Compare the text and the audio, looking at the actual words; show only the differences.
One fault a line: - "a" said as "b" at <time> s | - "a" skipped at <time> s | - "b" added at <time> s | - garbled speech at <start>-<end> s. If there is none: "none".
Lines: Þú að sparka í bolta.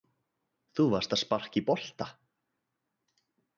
- "varst" added at 0.9 s